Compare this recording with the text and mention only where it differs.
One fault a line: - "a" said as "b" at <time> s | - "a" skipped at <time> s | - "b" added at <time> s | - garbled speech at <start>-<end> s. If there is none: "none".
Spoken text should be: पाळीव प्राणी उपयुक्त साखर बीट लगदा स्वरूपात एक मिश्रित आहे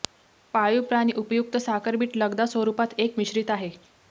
none